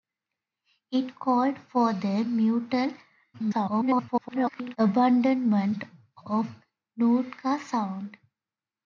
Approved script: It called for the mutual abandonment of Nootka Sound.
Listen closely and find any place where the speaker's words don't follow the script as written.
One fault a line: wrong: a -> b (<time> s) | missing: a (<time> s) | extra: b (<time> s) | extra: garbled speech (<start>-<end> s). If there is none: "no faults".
extra: garbled speech (3.3-4.8 s)